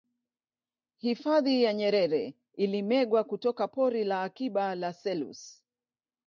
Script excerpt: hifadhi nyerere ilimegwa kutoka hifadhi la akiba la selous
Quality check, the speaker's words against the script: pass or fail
fail